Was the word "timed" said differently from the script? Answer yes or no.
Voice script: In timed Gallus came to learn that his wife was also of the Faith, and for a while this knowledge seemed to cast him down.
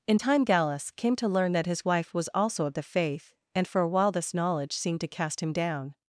yes